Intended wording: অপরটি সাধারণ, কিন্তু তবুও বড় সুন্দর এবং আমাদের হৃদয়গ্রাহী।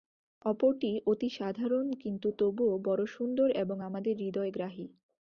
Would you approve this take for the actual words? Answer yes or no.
no